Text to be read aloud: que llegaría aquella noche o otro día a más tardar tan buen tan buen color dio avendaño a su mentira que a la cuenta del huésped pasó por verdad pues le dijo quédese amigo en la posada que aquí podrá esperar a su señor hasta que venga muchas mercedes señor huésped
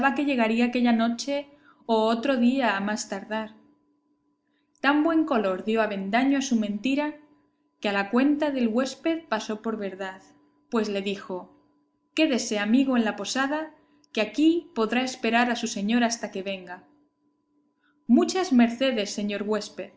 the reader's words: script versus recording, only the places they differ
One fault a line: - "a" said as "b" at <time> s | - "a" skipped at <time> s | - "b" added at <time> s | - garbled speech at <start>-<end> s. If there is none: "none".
- "tan buen" skipped at 5.2 s